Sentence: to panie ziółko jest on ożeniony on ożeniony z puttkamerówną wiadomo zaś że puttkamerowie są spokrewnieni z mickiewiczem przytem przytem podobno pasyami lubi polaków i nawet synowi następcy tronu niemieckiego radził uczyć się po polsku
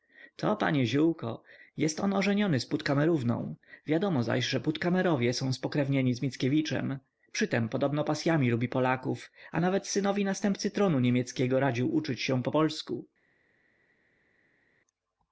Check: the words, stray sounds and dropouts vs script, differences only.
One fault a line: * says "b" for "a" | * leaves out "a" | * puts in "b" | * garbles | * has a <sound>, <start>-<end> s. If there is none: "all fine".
* leaves out "on ożeniony"
* leaves out "przytem"
* says "a" for "i"